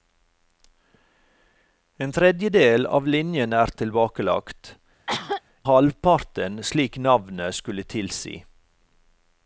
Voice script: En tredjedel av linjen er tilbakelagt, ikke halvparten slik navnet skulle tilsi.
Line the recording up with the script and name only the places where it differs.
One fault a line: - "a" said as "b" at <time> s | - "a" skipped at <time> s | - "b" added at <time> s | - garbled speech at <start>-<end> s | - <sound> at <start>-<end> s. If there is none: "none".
- "ikke" skipped at 4.8 s
- cough at 5.1-5.4 s